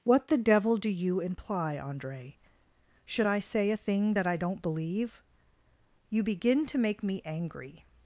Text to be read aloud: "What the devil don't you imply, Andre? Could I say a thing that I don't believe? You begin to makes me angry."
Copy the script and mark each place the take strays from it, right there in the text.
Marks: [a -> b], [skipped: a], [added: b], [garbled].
"What the devil [don't -> do] you imply, Andre? [Could -> Should] I say a thing that I don't believe? You begin to [makes -> make] me angry."